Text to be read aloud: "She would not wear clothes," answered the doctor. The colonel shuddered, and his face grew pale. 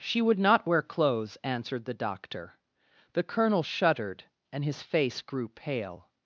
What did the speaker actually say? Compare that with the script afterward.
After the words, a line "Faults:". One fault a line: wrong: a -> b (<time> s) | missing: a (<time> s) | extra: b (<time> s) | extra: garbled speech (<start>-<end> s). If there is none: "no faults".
"She would not wear clothes," answered the doctor. The colonel shuddered, and his face grew pale.
Faults:
no faults